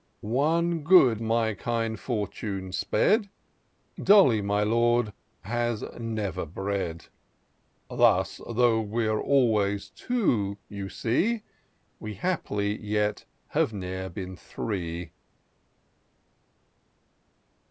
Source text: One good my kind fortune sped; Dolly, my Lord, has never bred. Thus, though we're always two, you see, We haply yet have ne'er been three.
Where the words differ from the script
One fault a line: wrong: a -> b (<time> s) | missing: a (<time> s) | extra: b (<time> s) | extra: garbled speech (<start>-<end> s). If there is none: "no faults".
no faults